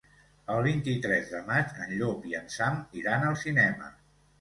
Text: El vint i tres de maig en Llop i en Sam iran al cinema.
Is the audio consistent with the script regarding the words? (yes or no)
yes